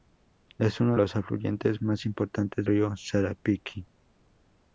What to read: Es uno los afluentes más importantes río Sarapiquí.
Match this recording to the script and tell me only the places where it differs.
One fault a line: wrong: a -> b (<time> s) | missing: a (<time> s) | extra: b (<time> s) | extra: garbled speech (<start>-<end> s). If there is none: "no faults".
no faults